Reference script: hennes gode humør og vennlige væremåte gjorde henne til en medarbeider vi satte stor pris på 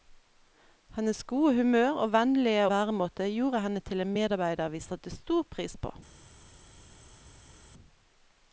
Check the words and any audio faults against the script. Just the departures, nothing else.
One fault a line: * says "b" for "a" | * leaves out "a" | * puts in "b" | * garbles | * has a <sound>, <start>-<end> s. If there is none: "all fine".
all fine